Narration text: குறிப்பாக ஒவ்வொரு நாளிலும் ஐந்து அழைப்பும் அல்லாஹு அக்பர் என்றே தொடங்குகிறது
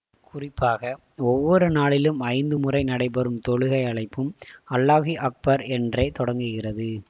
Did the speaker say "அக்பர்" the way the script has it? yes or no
yes